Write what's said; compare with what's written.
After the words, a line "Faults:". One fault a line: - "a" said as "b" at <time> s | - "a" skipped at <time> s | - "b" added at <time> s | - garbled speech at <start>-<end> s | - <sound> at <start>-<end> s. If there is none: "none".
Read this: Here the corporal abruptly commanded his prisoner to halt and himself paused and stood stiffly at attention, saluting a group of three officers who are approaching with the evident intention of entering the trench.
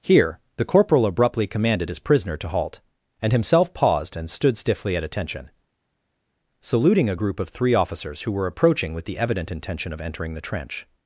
Here the corporal abruptly commanded his prisoner to halt and himself paused and stood stiffly at attention, saluting a group of three officers who were approaching with the evident intention of entering the trench.
Faults:
- "are" said as "were" at 8.3 s